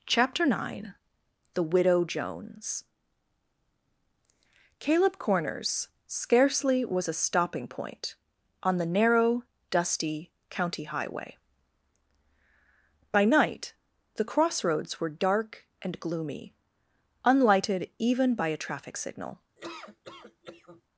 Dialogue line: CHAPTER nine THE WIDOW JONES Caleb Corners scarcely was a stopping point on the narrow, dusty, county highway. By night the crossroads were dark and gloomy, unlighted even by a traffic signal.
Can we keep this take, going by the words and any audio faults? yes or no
no